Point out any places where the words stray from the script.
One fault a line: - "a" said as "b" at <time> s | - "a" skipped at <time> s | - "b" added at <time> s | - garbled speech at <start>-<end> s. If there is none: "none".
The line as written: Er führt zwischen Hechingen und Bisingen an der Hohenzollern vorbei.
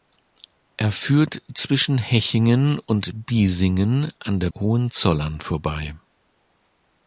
none